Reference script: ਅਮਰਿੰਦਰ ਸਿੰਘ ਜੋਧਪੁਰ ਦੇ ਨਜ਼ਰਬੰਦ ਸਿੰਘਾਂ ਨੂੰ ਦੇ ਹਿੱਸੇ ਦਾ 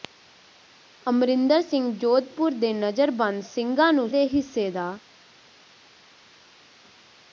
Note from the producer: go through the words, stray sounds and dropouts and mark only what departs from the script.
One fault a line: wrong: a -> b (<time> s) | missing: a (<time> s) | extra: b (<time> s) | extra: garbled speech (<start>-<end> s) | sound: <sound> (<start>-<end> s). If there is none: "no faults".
no faults